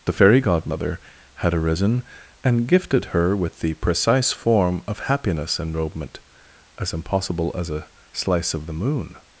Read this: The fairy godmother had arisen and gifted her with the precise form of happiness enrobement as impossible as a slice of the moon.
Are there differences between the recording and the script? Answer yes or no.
no